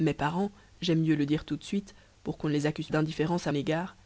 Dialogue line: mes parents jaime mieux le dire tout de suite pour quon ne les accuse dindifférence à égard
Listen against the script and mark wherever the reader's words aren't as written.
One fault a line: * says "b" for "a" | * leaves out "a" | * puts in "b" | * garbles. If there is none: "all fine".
all fine